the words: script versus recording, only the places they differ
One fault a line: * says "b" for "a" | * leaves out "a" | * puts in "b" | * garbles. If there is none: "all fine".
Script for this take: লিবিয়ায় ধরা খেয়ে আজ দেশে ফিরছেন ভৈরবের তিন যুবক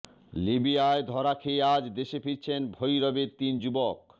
all fine